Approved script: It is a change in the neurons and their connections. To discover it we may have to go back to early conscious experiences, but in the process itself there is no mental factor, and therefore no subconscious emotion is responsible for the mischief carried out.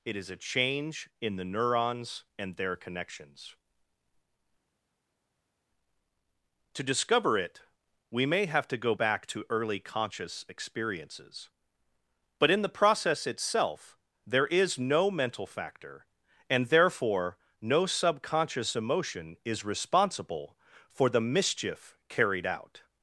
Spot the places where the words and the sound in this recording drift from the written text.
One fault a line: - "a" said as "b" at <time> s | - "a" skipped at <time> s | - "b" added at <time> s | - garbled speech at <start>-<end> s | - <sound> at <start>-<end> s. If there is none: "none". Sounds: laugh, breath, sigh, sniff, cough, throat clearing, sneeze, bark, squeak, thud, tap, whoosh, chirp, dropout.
none